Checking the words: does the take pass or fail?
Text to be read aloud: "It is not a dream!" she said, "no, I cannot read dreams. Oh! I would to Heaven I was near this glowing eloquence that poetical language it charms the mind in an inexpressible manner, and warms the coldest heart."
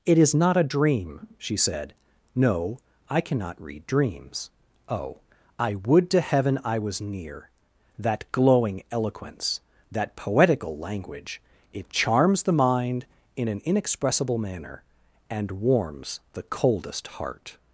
fail